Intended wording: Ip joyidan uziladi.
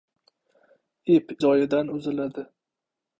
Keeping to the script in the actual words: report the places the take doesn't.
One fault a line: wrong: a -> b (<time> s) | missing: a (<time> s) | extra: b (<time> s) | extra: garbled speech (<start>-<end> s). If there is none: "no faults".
no faults